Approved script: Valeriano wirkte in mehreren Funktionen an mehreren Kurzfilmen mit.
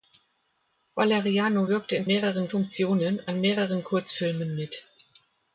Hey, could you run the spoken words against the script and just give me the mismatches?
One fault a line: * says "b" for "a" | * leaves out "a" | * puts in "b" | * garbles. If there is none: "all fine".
all fine